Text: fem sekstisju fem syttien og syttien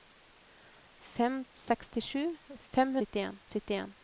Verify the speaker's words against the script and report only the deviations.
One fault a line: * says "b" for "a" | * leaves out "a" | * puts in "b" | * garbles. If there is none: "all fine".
all fine